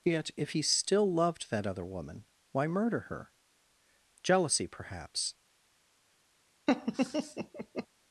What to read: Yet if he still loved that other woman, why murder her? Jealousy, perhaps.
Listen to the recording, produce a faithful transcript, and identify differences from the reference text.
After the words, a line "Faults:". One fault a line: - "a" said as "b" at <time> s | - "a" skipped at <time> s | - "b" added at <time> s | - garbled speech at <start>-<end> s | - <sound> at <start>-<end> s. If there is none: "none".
Yet if he still loved that other woman, why murder her? Jealousy, perhaps.
Faults:
- laugh at 6.7-7.9 s